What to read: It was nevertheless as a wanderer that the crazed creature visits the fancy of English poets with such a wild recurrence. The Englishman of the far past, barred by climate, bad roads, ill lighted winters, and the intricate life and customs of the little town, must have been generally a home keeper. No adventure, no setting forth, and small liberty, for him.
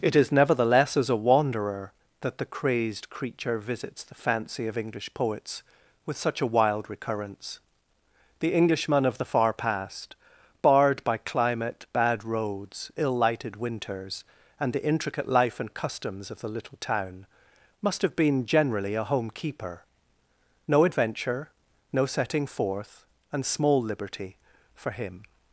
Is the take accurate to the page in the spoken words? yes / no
no